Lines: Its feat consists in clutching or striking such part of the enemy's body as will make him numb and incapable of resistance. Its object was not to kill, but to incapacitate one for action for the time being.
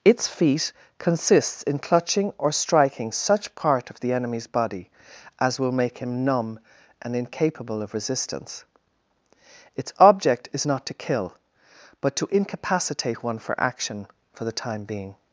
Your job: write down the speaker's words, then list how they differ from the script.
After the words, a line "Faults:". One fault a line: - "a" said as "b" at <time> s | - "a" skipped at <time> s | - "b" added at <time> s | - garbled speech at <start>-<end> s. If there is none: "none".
Its feat consists in clutching or striking such part of the enemy's body as will make him numb and incapable of resistance. Its object is not to kill, but to incapacitate one for action for the time being.
Faults:
- "was" said as "is" at 10.5 s